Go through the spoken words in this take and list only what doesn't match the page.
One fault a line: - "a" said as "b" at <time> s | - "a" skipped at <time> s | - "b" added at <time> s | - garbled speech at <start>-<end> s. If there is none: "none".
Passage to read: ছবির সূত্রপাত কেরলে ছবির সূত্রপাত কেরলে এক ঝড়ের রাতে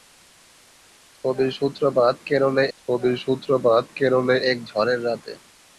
none